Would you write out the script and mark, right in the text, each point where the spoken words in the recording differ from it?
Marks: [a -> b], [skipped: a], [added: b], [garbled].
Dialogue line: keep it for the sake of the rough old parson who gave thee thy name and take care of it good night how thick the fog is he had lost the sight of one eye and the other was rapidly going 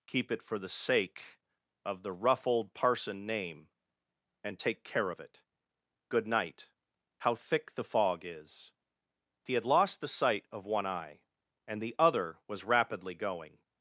keep it for the sake of the rough old parson [skipped: who gave thee thy] name and take care of it good night how thick the fog is he had lost the sight of one eye and the other was rapidly going